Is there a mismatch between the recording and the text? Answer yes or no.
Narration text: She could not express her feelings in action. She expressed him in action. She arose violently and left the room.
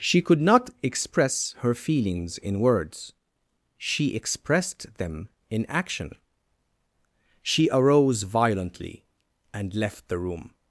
yes